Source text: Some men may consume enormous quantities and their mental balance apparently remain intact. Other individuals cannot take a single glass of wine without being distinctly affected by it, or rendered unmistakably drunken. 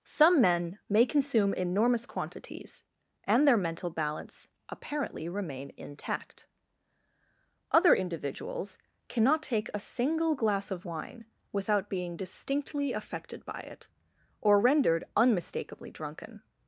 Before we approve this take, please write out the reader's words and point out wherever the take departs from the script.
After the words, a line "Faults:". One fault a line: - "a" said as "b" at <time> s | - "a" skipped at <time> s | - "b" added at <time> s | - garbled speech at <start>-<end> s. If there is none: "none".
Some men may consume enormous quantities and their mental balance apparently remain intact. Other individuals cannot take a single glass of wine without being distinctly affected by it, or rendered unmistakably drunken.
Faults:
none